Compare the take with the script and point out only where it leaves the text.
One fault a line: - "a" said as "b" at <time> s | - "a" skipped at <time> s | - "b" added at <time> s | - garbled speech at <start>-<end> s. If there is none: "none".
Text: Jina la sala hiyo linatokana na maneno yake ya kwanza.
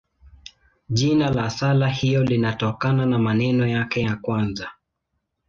none